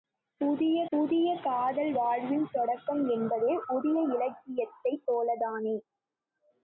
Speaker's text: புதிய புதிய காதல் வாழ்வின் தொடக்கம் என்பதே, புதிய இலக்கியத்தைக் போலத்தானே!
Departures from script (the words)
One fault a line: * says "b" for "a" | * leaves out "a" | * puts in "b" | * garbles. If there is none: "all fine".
all fine